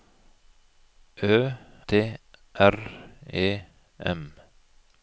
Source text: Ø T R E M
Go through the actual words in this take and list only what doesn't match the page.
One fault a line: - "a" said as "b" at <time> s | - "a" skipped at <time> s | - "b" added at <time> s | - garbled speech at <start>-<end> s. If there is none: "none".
none